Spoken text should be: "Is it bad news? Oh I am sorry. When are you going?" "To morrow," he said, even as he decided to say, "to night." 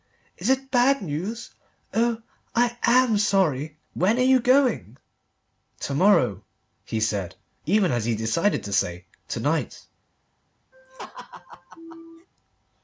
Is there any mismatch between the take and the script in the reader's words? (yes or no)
no